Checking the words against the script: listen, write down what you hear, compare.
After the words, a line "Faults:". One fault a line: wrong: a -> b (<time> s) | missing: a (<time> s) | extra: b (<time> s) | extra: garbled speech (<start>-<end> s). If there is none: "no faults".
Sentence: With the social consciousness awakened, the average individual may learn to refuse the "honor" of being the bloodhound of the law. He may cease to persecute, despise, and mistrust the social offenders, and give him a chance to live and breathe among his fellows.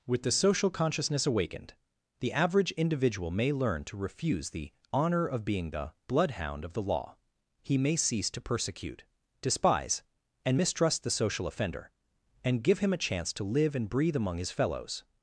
With the social consciousness awakened, the average individual may learn to refuse the "honor" of being the bloodhound of the law. He may cease to persecute, despise, and mistrust the social offender, and give him a chance to live and breathe among his fellows.
Faults:
wrong: offenders -> offender (11.5 s)